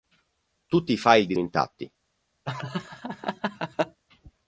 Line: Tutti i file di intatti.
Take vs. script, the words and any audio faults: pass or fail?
fail